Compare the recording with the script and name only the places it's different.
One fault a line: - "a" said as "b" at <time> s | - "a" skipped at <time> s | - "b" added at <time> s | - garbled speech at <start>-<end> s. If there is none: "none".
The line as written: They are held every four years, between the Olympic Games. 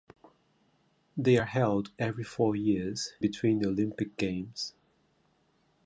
none